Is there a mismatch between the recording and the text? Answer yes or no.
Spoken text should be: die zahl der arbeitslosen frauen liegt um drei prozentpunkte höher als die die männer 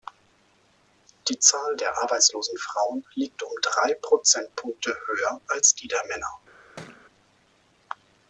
yes